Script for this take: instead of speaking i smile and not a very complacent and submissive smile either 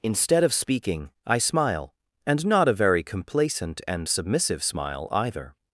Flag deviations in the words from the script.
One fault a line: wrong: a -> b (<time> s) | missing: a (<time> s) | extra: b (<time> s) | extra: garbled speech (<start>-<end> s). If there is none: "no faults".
no faults